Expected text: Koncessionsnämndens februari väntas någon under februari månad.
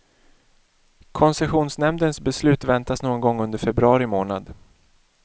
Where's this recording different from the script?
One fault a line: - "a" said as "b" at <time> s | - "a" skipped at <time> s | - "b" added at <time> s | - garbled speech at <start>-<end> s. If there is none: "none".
- "februari" said as "beslut" at 2.2 s
- "gång" added at 3.2 s